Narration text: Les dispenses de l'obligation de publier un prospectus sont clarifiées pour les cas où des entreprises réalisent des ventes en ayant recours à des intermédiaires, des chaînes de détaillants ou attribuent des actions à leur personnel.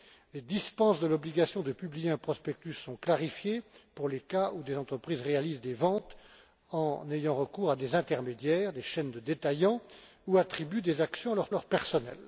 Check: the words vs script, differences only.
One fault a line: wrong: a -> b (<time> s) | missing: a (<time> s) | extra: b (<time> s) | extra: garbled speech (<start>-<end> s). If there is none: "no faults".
extra: leur (11.5 s)